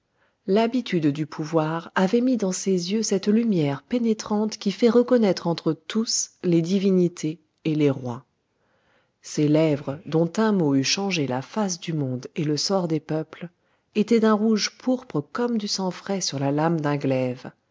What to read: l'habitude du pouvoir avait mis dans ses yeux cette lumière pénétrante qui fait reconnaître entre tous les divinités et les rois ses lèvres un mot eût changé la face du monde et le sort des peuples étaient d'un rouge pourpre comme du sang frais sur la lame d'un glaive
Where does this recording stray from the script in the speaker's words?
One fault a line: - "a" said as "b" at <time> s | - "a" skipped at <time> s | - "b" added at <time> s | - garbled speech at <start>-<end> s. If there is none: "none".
- "dont" added at 10.1 s